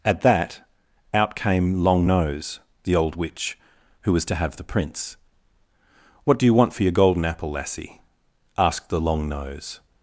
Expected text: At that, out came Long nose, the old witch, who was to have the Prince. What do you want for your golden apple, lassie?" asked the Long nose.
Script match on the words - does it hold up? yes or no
yes